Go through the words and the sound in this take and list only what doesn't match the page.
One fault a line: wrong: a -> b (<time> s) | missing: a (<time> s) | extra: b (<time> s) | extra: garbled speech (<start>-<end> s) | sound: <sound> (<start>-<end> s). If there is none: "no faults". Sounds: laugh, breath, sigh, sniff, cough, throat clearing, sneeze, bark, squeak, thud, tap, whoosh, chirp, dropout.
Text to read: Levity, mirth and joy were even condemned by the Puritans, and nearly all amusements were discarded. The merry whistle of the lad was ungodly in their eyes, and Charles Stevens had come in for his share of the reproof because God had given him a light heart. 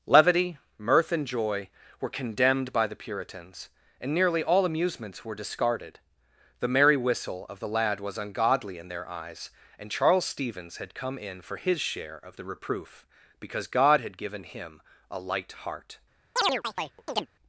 missing: even (2.1 s)
sound: chirp (16.4-17.3 s)